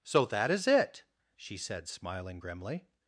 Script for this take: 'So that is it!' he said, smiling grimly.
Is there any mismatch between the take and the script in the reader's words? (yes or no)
yes